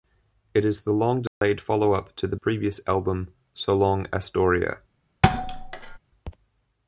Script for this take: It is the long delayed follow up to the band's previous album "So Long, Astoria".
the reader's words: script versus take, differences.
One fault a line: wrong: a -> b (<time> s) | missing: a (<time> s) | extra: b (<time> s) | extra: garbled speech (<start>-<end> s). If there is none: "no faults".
missing: band's (2.4 s)